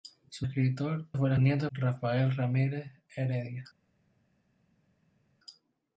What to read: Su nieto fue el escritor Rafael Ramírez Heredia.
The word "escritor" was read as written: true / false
false